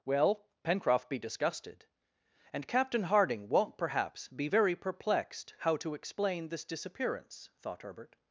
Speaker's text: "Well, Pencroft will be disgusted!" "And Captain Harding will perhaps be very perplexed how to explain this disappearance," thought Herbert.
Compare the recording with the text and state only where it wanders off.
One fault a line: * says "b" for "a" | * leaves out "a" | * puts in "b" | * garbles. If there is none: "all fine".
* leaves out "will"
* says "won't" for "will"